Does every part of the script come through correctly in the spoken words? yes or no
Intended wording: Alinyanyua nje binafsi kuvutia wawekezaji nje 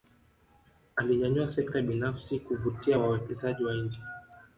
no